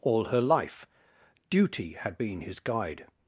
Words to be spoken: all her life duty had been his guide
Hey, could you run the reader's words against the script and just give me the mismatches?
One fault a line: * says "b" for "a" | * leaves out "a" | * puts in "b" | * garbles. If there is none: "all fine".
all fine